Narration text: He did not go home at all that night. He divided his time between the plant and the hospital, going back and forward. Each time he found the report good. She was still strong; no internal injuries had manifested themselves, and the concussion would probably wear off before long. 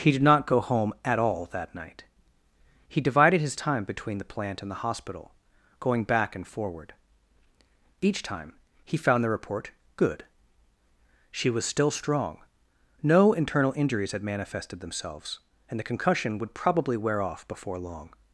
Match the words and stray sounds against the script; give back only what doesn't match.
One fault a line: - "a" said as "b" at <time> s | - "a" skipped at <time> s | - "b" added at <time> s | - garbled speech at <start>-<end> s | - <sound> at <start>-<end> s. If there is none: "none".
none